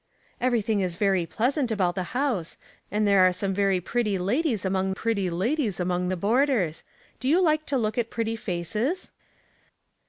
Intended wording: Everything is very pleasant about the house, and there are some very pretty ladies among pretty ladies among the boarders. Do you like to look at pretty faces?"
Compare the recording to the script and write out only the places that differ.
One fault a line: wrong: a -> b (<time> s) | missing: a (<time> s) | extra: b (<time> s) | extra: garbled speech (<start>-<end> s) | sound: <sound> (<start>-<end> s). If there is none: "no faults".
no faults